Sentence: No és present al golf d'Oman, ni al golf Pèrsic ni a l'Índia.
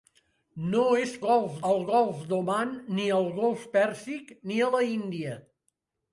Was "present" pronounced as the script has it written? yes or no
no